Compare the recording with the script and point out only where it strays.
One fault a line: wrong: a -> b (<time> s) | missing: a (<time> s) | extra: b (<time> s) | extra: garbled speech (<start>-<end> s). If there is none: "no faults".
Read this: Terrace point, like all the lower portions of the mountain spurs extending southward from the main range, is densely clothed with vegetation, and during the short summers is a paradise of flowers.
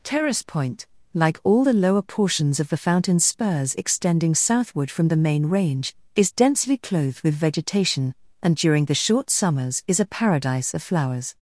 wrong: mountain -> fountain (2.7 s)